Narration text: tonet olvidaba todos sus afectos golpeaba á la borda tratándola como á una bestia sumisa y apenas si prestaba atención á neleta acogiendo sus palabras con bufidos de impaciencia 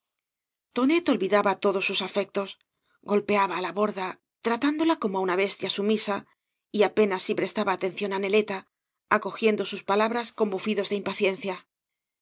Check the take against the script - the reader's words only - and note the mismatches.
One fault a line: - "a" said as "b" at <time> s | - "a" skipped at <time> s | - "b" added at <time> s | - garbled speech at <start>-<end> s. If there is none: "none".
none